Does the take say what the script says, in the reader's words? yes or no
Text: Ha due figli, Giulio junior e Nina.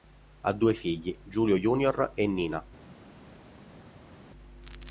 yes